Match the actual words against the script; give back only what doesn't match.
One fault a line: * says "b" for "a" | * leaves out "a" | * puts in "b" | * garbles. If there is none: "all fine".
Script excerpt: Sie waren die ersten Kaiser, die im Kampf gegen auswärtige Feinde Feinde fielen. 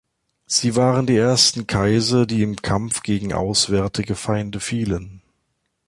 * leaves out "Feinde"